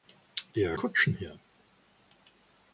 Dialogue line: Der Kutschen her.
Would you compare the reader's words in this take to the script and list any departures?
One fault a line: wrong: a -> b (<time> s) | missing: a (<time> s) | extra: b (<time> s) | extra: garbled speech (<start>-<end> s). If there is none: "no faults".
no faults